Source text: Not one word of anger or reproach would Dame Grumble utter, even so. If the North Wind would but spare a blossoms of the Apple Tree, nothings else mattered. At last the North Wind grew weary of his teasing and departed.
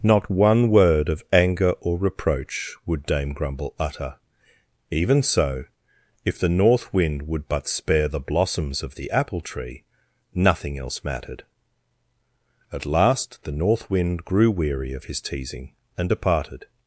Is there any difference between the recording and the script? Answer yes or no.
yes